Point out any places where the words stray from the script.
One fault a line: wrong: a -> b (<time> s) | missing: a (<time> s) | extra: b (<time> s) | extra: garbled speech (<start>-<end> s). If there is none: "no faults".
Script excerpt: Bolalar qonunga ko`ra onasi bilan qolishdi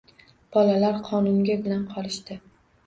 missing: ko`ra onasi (1.6 s)